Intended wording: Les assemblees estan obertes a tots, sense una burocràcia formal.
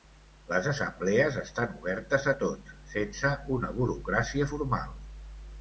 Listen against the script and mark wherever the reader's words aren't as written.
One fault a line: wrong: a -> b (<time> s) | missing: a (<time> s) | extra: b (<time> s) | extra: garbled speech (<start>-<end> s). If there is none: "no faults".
no faults